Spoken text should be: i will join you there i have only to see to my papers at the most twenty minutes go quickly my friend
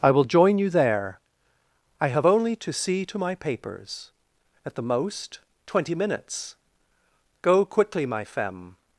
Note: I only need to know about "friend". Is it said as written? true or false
false